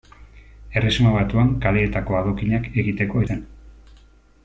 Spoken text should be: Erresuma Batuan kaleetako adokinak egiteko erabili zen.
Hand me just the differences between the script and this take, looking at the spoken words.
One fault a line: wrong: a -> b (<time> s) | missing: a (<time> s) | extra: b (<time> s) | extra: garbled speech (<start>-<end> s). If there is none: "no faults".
missing: erabili (3.3 s)